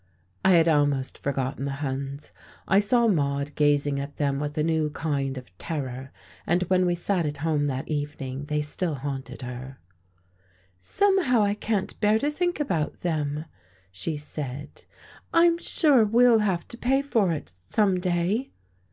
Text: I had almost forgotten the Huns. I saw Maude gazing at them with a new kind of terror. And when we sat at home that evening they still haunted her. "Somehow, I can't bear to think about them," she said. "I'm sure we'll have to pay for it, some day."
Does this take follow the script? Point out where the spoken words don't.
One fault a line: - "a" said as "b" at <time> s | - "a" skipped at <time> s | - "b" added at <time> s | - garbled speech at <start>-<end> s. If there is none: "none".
none